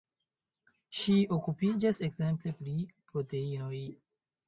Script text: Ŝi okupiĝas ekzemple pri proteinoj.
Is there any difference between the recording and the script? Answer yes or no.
no